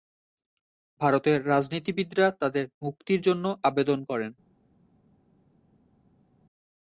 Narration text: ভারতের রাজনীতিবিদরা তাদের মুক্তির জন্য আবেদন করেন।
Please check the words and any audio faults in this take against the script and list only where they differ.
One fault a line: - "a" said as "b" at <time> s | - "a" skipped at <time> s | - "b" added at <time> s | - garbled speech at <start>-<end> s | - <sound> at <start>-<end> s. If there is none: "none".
none